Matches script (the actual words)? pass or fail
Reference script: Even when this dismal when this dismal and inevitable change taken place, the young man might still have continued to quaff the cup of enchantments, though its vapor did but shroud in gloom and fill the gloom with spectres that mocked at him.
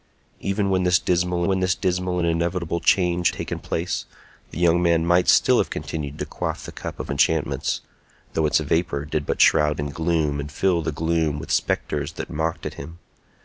pass